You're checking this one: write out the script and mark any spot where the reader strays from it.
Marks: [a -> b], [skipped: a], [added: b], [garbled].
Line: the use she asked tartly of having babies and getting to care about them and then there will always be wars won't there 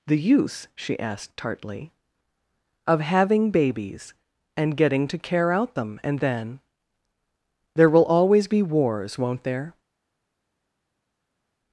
the use she asked tartly of having babies and getting to care [about -> out] them and then there will always be wars won't there